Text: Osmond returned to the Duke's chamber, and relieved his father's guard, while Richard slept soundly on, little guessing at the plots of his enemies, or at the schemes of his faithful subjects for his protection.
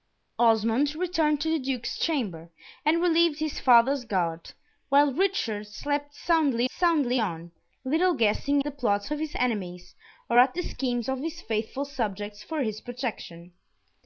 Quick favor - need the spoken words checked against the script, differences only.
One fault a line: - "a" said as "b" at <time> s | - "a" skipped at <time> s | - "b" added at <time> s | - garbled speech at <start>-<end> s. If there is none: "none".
- "soundly" added at 6.7 s
- "at" skipped at 8.6 s